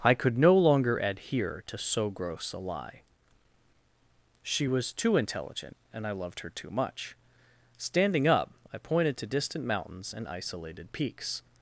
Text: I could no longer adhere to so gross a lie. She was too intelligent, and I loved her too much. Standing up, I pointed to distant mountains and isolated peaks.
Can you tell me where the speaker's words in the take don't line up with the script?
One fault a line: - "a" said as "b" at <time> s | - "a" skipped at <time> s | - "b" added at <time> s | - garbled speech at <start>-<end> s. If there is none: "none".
none